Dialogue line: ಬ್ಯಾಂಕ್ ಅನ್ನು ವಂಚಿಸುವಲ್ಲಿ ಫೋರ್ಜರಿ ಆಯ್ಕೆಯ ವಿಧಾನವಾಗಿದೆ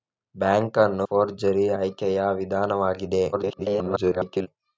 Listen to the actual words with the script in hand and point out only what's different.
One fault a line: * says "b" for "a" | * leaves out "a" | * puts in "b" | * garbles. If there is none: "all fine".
* leaves out "ವಂಚಿಸುವಲ್ಲಿ"
* garbles